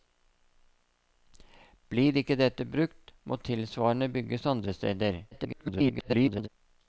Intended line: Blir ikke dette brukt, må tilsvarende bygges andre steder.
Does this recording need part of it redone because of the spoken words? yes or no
yes